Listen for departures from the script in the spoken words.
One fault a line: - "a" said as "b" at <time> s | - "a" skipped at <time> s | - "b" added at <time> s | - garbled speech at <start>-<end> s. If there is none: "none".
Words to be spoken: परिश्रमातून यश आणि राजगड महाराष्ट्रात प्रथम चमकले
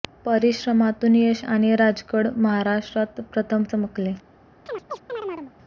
none